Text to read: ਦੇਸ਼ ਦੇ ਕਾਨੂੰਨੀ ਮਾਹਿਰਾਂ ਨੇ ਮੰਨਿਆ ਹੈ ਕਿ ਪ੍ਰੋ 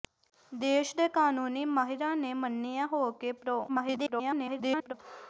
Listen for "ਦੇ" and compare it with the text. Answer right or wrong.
right